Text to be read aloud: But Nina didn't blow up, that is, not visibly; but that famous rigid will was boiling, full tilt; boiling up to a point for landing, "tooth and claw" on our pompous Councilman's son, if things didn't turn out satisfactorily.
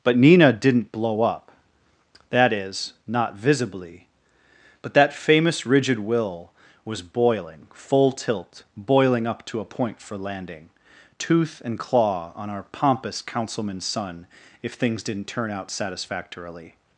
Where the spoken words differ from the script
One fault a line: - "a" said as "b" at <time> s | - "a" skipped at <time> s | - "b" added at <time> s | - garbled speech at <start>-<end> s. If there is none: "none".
none